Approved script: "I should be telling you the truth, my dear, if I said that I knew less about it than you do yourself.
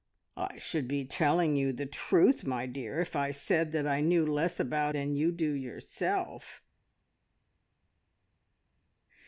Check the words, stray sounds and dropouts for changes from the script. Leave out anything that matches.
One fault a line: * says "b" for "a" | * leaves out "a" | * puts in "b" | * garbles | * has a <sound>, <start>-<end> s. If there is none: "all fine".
* leaves out "it"